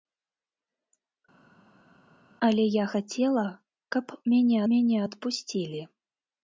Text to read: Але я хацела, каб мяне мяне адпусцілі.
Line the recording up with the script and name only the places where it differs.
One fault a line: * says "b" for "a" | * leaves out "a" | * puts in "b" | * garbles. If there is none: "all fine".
all fine